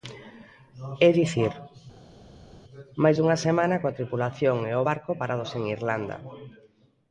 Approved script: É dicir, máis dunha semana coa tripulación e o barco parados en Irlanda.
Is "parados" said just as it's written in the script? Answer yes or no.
yes